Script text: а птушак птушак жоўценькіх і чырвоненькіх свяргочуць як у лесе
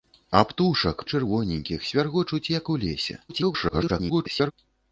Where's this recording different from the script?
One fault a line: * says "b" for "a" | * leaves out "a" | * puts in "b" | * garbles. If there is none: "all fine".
* leaves out "птушак жоўценькіх"
* garbles